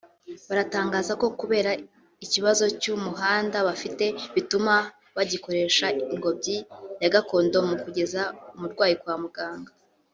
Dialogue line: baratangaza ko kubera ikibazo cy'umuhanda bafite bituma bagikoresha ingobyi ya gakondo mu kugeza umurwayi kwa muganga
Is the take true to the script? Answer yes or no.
yes